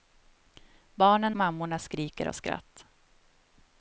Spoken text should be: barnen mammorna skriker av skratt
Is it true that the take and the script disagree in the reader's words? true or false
false